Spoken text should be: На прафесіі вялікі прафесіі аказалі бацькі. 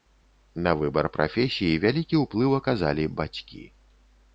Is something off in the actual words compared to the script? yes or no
yes